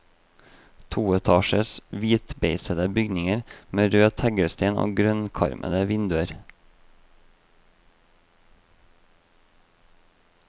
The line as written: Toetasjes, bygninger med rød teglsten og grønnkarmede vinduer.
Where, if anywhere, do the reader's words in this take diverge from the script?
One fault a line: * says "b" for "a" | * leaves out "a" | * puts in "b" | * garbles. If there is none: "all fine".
* puts in "hvitbeisede"